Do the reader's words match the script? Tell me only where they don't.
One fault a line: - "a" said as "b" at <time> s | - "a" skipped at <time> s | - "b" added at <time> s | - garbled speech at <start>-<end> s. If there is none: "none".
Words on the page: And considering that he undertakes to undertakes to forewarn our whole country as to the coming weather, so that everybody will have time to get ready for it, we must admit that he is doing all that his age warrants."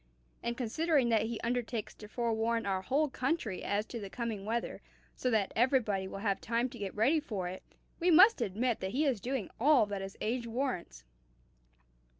- "undertakes to" skipped at 2.1 s